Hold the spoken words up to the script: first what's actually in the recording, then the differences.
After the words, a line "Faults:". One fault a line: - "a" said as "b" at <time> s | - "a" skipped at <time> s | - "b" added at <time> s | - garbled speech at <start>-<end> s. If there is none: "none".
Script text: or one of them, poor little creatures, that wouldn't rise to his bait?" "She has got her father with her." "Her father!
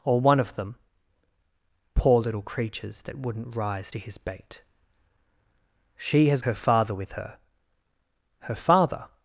or one of them, poor little creatures, that wouldn't rise to his bait?" "She has her father with her." "Her father!
Faults:
- "got" skipped at 6.4 s